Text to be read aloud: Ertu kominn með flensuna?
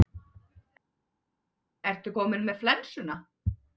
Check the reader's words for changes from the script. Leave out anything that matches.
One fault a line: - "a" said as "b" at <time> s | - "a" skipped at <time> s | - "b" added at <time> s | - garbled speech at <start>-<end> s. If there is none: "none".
none